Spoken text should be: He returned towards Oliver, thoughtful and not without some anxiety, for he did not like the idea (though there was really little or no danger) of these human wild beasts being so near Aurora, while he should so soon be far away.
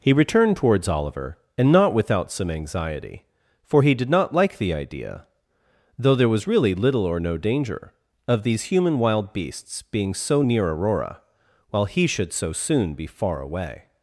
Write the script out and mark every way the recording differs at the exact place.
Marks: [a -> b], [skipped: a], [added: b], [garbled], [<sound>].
He returned towards Oliver, [skipped: thoughtful] and not without some anxiety, for he did not like the idea (though there was really little or no danger) of these human wild beasts being so near Aurora, while he should so soon be far away.